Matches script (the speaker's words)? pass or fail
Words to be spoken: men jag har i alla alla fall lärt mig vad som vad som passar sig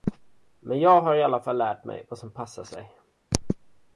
fail